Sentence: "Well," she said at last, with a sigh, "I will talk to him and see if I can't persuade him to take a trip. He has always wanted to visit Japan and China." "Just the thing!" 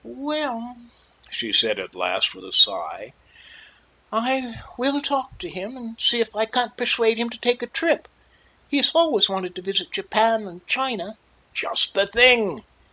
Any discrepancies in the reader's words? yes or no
no